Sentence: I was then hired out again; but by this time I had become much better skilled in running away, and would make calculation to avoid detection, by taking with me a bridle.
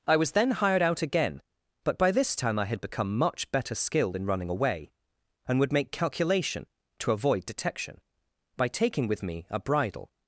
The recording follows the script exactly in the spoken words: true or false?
true